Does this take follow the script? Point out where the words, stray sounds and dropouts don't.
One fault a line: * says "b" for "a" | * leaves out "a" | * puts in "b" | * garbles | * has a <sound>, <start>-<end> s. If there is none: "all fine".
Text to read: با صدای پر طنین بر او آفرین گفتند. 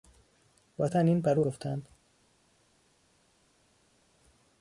* leaves out "صدای پر"
* leaves out "آفرین"